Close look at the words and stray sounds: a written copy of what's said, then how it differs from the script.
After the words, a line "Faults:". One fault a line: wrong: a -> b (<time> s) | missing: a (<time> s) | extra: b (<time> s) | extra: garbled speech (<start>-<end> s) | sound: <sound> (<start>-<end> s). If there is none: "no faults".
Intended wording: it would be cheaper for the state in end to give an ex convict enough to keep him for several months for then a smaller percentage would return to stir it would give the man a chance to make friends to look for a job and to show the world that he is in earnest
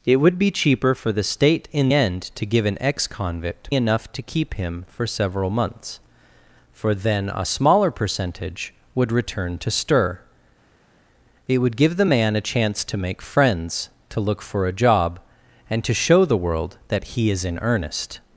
it would be cheaper for the state in end to give an ex convict enough to keep him for several months for then a smaller percentage would return to stir it would give the man a chance to make friends to look for a job and to show the world that he is in earnest
Faults:
no faults